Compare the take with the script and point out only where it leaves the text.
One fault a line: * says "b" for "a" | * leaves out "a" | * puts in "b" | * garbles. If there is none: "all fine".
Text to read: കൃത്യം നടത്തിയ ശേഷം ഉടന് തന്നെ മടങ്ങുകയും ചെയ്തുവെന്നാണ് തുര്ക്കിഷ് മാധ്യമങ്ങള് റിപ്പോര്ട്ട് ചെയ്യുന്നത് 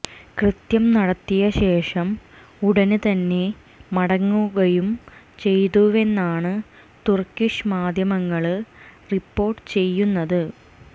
all fine